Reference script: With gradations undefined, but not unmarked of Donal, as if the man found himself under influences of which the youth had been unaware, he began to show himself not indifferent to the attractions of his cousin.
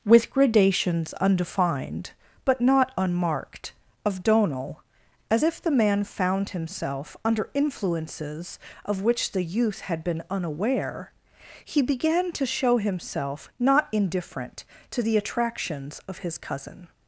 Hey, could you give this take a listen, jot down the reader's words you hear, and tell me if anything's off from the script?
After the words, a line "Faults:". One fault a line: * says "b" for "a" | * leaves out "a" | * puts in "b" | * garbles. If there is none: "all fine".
With gradations undefined, but not unmarked of Donal, as if the man found himself under influences of which the youth had been unaware, he began to show himself not indifferent to the attractions of his cousin.
Faults:
all fine